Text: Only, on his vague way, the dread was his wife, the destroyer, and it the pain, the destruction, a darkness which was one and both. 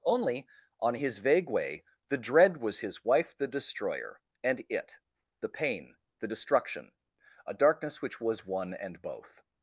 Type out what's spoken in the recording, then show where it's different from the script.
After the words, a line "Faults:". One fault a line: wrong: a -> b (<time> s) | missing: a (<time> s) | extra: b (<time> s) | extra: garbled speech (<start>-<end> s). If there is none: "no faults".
Only, on his vague way, the dread was his wife, the destroyer, and it the pain, the destruction, a darkness which was one and both.
Faults:
no faults